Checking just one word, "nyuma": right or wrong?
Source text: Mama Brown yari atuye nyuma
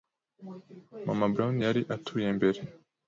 wrong